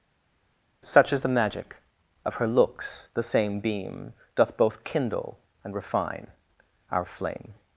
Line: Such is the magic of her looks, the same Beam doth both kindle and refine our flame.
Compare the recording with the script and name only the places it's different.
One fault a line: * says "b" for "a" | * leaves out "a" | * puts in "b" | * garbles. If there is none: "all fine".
all fine